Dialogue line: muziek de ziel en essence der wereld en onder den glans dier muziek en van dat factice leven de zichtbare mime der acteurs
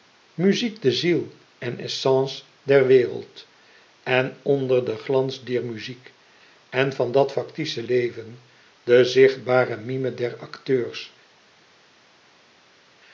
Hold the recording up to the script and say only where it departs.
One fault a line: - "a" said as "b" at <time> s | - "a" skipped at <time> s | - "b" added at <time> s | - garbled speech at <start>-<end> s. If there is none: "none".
none